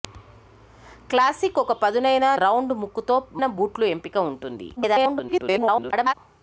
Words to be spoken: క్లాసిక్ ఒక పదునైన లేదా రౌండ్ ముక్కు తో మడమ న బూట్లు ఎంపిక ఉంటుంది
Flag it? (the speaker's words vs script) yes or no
yes